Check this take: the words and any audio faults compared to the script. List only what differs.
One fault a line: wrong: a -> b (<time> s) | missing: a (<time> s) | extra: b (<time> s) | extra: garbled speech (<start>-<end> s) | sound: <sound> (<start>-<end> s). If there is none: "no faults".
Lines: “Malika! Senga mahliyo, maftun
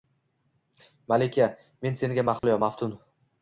extra: Men (1.9 s)
sound: dropout (2.4-2.4 s)